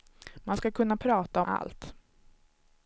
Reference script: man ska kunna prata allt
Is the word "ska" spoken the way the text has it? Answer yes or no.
yes